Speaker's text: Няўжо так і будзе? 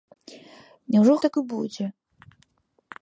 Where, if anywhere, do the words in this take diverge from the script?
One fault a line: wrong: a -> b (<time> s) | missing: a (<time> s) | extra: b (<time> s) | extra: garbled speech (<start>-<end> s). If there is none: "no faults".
no faults